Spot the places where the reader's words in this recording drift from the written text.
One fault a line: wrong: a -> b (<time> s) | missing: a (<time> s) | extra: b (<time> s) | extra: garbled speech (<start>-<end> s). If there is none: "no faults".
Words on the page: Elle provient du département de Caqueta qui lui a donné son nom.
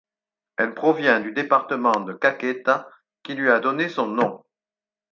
no faults